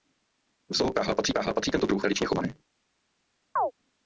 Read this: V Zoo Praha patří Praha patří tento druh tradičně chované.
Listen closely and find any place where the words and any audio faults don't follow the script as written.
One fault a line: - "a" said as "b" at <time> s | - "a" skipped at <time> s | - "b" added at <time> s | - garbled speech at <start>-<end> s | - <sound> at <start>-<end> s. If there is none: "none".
- chirp at 3.6-3.7 s